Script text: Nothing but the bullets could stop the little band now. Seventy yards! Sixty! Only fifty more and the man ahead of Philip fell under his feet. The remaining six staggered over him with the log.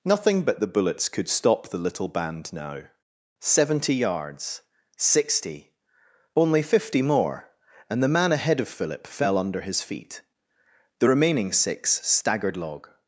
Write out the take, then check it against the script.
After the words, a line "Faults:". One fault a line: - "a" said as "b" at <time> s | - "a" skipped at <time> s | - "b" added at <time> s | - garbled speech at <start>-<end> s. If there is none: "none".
Nothing but the bullets could stop the little band now. Seventy yards! Sixty! Only fifty more and the man ahead of Philip fell under his feet. The remaining six staggered log.
Faults:
- "over him with the" skipped at 12.5 s